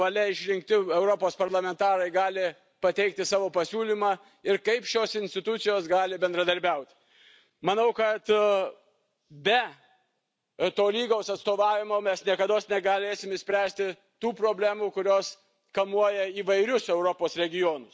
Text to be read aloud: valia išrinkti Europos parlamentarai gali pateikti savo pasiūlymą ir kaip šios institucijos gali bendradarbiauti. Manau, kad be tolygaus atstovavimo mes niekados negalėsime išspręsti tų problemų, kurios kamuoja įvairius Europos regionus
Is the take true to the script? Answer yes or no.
yes